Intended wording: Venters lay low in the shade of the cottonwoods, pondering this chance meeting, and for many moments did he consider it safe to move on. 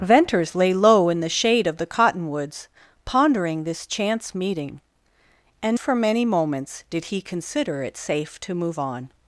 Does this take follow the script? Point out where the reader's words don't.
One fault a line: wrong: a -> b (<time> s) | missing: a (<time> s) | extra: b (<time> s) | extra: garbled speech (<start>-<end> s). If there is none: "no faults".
no faults